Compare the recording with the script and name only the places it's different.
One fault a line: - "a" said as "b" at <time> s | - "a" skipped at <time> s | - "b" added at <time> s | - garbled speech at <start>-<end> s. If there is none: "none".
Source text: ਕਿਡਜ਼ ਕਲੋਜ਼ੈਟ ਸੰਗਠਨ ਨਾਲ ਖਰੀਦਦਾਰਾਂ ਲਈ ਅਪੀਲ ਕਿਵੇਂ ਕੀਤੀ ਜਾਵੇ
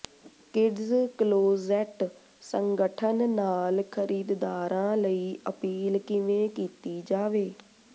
none